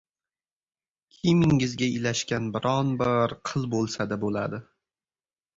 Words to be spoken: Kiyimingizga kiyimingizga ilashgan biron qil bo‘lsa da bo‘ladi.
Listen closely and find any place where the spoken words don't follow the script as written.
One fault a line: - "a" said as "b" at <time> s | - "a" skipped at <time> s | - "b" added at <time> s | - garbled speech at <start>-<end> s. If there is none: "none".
- "kiyimingizga" skipped at 1.9 s
- "bir" added at 3.0 s